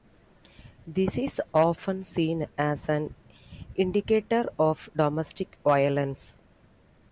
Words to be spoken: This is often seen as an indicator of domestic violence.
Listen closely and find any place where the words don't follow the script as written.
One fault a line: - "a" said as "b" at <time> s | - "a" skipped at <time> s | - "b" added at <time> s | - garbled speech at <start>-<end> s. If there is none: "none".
none